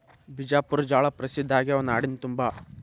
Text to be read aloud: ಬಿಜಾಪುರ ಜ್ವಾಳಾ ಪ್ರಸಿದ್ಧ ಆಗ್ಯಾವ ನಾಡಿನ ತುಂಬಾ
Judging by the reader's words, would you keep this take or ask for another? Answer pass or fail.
pass